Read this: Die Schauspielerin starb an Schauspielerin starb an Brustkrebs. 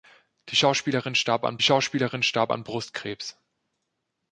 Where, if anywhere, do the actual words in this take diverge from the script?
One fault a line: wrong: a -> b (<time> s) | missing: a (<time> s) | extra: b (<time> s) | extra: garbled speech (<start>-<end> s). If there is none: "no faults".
no faults